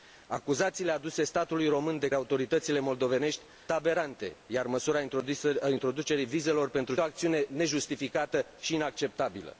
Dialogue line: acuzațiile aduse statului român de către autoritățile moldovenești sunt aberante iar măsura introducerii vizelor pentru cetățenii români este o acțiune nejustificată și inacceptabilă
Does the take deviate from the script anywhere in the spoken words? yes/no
yes